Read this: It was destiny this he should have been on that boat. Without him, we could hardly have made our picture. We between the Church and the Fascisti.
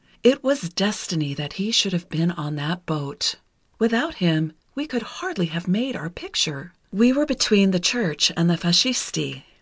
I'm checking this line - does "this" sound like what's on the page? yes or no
no